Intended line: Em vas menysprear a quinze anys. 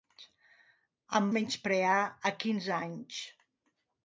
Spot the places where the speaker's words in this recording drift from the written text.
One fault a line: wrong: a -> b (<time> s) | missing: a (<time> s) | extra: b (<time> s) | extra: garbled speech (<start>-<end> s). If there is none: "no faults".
missing: vas (1.3 s)